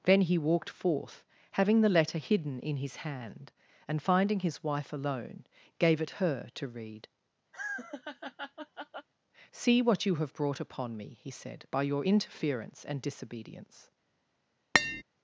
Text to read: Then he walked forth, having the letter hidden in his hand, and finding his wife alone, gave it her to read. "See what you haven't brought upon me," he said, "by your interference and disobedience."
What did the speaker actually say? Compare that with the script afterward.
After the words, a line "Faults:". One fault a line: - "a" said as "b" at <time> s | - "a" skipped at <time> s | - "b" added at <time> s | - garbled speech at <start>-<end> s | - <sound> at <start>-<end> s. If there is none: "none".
Then he walked forth, having the letter hidden in his hand, and finding his wife alone, gave it her to read. "See what you have brought upon me," he said, "by your interference and disobedience."
Faults:
- laugh at 7.5-9.1 s
- "haven't" said as "have" at 10.2 s
- tap at 14.7-15.0 s